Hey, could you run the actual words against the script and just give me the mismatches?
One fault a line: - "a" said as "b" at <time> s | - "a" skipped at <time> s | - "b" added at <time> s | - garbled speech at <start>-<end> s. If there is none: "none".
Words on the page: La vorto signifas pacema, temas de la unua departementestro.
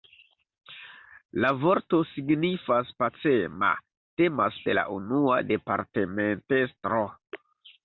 none